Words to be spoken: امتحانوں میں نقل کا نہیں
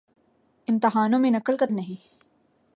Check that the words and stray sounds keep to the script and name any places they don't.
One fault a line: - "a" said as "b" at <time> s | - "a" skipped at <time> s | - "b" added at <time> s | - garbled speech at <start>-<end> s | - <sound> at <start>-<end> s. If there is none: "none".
none